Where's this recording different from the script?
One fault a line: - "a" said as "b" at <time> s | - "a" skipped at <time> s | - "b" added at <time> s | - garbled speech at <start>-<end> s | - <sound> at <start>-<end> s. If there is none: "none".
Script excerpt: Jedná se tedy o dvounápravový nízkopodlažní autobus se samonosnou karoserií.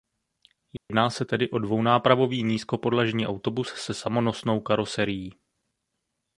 - dropout at 0.8-0.9 s